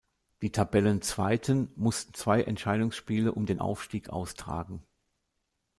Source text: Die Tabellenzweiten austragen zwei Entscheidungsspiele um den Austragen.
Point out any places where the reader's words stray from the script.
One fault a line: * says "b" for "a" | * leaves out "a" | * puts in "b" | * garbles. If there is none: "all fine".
* says "mussten" for "austragen"
* puts in "Aufstieg"